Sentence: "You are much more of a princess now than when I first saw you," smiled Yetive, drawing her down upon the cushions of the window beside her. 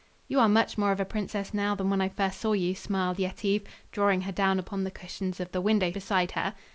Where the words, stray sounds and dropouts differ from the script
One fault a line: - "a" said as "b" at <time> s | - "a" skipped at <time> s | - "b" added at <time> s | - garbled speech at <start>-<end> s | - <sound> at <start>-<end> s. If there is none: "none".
none